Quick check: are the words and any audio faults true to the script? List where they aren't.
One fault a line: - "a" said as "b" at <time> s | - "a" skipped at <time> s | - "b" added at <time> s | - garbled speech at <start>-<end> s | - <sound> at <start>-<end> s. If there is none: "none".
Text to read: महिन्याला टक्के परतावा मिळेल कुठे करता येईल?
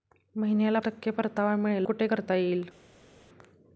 none